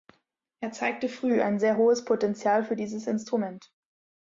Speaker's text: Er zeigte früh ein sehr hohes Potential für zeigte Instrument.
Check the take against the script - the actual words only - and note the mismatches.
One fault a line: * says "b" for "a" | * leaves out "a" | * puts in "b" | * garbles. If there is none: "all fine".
* says "dieses" for "zeigte"